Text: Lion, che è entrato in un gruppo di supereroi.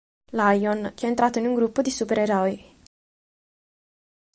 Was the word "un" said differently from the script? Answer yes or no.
no